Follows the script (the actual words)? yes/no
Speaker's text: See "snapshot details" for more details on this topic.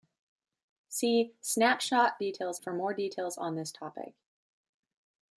yes